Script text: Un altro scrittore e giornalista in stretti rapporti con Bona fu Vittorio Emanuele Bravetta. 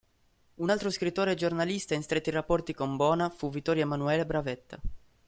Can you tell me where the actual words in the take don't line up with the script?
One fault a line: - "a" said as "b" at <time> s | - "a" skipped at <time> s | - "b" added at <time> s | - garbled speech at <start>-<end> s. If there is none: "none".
none